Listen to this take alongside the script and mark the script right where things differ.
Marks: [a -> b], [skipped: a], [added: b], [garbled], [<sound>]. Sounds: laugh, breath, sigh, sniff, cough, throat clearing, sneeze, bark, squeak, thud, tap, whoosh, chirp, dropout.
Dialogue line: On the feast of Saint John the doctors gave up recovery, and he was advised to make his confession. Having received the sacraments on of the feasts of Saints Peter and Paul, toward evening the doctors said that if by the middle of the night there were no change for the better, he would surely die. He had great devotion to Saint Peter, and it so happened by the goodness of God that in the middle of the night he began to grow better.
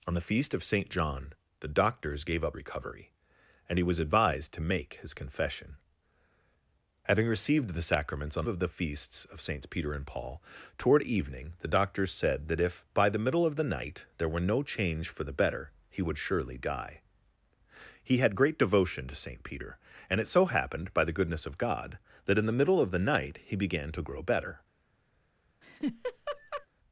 On the feast of Saint John the doctors gave up recovery, and he was advised to make his confession. Having received the sacraments on of the feasts of Saints Peter and Paul, toward evening the doctors said that if by the middle of the night there were no change for the better, he would surely die. He had great devotion to Saint Peter, and it so happened by the goodness of God that in the middle of the night he began to grow better. [laugh]